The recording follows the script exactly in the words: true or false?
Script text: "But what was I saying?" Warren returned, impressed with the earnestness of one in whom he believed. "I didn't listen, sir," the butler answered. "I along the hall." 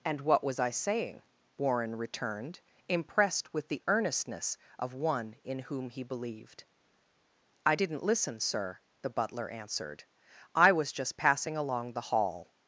false